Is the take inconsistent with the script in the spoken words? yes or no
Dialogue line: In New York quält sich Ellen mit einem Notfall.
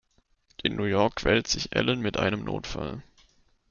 no